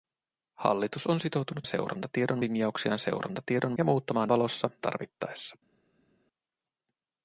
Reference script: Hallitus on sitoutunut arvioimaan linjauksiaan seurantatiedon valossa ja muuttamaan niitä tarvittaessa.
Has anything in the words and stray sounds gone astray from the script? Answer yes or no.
yes